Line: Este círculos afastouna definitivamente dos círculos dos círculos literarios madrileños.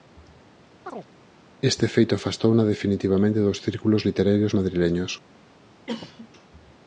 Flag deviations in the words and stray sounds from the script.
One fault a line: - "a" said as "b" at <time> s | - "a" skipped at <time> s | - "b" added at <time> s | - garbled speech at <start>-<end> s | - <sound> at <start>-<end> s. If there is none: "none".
- chirp at 0.9-1.1 s
- "círculos" said as "feito" at 1.9 s
- "dos círculos" skipped at 4.0 s
- cough at 5.9-6.3 s